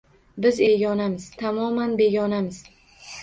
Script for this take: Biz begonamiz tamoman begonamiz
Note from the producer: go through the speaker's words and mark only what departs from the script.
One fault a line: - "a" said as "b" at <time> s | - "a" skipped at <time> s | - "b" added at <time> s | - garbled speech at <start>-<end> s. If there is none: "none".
none